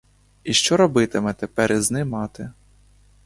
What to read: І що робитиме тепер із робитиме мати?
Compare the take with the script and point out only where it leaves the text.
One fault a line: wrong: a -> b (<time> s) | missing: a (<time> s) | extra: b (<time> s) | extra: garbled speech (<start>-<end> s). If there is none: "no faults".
wrong: робитиме -> ним (1.9 s)